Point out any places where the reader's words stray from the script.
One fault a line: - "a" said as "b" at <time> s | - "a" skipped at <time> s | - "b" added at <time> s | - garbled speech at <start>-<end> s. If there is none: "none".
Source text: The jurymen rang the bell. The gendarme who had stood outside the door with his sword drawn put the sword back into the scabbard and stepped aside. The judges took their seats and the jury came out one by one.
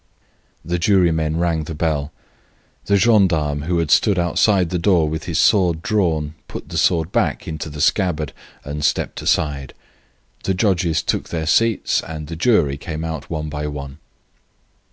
none